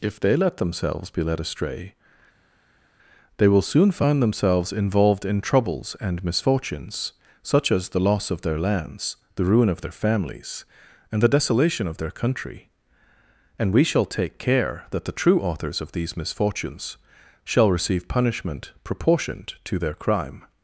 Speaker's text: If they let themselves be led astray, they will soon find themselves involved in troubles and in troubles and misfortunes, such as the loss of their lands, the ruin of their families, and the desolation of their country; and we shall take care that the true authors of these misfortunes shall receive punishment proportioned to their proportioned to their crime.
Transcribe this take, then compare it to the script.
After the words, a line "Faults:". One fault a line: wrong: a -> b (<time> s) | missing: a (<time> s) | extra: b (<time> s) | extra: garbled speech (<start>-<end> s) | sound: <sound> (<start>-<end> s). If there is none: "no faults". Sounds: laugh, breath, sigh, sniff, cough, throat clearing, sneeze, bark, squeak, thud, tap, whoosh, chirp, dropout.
If they let themselves be led astray, they will soon find themselves involved in troubles and misfortunes, such as the loss of their lands, the ruin of their families, and the desolation of their country; and we shall take care that the true authors of these misfortunes shall receive punishment proportioned to their crime.
Faults:
missing: in troubles and (6.2 s)
missing: proportioned to their (19.9 s)